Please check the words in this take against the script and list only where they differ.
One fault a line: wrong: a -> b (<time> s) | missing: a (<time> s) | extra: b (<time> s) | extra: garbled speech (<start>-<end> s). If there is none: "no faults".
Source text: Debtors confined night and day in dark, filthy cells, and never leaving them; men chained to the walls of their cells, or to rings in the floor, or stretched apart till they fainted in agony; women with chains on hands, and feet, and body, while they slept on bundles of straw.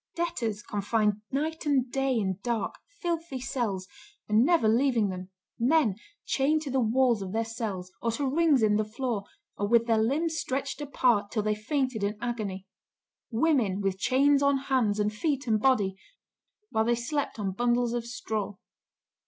extra: with their limbs (9.7 s)